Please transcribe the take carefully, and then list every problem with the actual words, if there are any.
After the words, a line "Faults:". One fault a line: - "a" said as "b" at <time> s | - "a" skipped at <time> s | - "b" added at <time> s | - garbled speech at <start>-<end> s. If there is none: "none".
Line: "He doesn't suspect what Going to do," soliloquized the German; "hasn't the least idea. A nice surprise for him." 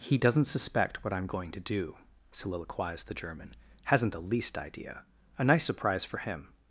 "He doesn't suspect what I'm going to do," soliloquized the German; "hasn't the least idea. A nice surprise for him."
Faults:
- "I'm" added at 1.1 s